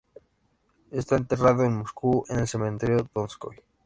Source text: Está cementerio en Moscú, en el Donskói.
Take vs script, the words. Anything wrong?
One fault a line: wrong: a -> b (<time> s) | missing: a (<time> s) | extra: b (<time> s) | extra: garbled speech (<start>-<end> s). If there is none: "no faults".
wrong: cementerio -> enterrado (1.1 s)
extra: cementerio (2.5 s)